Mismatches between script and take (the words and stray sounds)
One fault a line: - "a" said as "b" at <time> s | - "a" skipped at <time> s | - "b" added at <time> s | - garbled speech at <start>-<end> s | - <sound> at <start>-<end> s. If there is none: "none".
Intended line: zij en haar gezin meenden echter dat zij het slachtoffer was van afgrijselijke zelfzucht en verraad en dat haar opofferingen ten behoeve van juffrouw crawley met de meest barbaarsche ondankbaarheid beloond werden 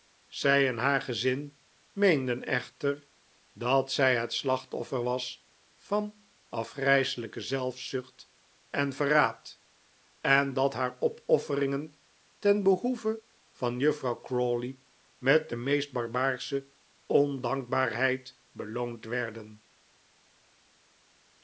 none